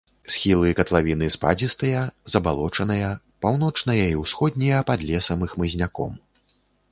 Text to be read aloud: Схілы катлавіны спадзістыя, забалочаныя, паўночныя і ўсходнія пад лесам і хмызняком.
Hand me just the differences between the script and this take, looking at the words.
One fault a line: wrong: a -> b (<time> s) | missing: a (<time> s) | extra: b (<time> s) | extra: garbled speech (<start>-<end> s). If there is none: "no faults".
no faults